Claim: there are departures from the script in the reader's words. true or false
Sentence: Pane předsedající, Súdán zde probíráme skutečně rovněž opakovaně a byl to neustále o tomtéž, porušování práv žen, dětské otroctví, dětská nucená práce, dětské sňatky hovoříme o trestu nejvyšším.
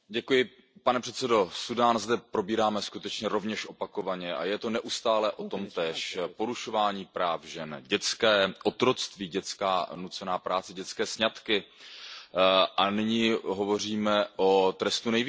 true